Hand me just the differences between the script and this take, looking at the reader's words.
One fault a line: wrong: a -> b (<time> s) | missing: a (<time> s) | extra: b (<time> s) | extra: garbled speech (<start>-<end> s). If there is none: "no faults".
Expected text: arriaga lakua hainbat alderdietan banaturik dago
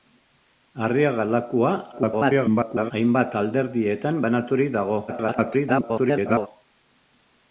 extra: garbled speech (1.9-2.9 s)
extra: garbled speech (5.1-6.5 s)